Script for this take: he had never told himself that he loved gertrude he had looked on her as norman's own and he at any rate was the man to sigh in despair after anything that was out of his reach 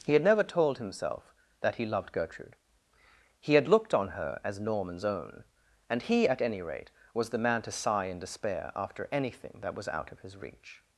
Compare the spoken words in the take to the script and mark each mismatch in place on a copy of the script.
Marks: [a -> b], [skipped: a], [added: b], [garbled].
he had never told himself that he loved gertrude he had looked on her as norman's own and he at any rate was the man to sigh in despair after anything that was out of his reach